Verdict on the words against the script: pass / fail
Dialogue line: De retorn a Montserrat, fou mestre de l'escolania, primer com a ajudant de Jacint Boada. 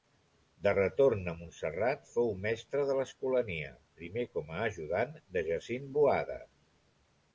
pass